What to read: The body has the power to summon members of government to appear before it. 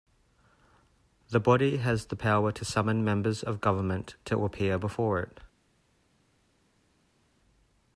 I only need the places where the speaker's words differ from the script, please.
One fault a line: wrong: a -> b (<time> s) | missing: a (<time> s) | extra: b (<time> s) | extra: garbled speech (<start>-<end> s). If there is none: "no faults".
no faults